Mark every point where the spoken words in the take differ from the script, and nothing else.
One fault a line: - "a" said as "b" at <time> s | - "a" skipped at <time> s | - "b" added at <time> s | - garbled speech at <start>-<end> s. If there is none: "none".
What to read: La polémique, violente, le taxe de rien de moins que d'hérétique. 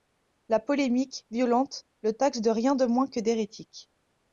none